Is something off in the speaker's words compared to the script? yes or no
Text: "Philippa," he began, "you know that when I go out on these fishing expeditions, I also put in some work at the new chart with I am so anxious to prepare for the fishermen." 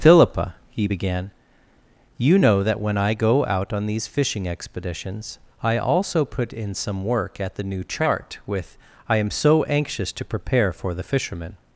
no